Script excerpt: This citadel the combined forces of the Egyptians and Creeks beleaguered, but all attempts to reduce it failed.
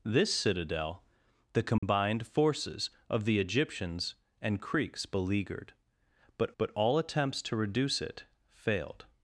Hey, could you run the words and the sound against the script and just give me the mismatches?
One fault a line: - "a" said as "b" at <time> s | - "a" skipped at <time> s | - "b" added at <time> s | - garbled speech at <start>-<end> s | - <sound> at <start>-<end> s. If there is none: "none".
- dropout at 1.8-1.8 s
- "but" added at 6.6 s